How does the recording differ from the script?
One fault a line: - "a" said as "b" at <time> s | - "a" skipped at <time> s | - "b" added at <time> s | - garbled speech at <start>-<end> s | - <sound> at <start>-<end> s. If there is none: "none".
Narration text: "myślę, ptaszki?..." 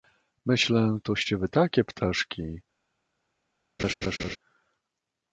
- "toście wy takie" added at 1.0 s
- laugh at 3.8-4.4 s